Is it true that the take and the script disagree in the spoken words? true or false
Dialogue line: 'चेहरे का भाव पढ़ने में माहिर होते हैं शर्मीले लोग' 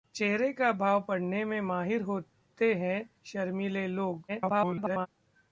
true